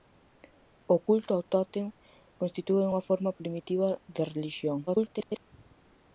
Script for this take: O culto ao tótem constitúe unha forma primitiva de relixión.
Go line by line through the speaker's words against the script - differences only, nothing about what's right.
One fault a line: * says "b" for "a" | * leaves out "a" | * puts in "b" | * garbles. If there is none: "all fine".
* garbles